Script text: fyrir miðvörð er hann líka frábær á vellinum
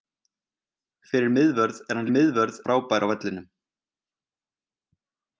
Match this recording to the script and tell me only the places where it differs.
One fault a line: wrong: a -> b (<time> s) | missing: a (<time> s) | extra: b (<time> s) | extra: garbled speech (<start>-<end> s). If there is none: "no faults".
wrong: líka -> miðvörð (2.1 s)